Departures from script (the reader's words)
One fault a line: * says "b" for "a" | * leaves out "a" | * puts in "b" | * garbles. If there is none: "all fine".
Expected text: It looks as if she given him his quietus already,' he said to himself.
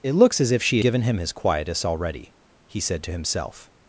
all fine